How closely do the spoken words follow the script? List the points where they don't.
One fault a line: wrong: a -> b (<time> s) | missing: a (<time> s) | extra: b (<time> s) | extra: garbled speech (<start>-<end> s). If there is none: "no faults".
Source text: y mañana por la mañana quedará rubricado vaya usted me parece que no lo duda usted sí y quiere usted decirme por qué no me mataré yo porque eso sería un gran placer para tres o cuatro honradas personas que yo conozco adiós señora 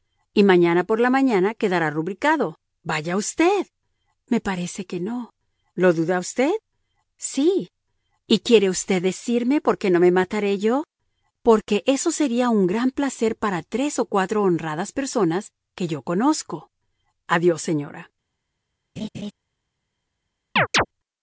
no faults